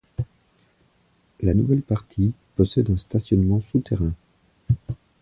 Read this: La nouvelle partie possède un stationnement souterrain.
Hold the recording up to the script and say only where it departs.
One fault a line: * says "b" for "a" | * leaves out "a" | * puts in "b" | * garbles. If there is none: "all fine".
all fine